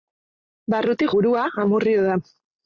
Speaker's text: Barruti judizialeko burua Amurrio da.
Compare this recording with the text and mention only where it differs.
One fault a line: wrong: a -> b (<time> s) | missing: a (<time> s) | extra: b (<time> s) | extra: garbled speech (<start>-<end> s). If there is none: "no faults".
missing: judizialeko (1.1 s)